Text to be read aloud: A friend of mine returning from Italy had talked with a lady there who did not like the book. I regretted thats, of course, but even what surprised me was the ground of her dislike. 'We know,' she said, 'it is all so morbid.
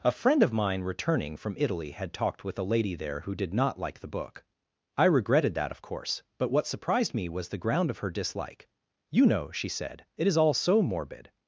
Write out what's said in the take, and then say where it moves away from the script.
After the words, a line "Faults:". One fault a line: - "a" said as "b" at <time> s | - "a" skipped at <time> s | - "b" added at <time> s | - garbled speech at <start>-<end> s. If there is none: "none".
A friend of mine returning from Italy had talked with a lady there who did not like the book. I regretted that, of course, but what surprised me was the ground of her dislike. 'You know,' she said, 'it is all so morbid.
Faults:
- "thats" said as "that" at 5.5 s
- "even" skipped at 6.5 s
- "We" said as "You" at 9.1 s